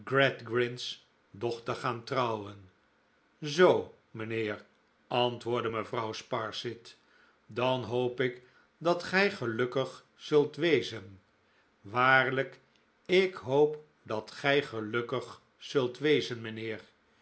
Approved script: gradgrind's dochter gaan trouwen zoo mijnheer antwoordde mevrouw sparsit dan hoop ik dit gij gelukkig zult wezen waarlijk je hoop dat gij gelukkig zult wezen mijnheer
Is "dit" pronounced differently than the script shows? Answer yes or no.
yes